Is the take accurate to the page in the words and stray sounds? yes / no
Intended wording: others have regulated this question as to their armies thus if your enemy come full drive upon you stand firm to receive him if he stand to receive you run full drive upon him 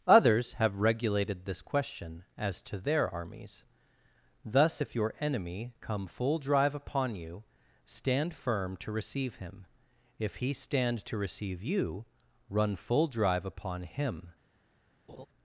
no